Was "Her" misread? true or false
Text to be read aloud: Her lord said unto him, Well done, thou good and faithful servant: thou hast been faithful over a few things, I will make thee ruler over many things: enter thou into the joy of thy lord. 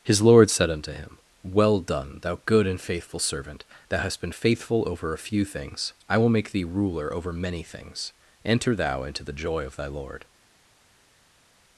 true